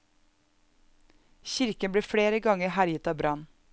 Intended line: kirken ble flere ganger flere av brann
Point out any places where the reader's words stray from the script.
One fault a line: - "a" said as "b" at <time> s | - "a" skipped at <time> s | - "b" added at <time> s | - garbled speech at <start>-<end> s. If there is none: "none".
- "flere" said as "herjet" at 2.8 s